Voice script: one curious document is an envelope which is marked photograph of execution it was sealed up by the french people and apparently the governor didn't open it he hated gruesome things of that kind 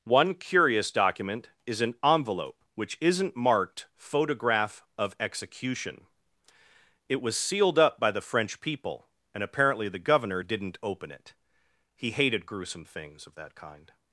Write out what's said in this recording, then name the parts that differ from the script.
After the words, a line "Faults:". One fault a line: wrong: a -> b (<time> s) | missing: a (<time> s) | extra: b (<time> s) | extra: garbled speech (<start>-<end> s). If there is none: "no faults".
one curious document is an envelope which isn't marked photograph of execution it was sealed up by the french people and apparently the governor didn't open it he hated gruesome things of that kind
Faults:
wrong: is -> isn't (3.0 s)